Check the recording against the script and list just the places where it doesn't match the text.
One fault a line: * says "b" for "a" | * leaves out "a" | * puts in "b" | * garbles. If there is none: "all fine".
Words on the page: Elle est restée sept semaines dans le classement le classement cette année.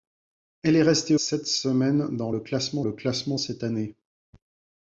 all fine